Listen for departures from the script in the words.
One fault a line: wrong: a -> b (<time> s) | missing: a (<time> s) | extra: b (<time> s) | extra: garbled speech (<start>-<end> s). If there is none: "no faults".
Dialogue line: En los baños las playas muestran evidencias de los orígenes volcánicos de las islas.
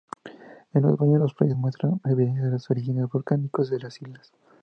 no faults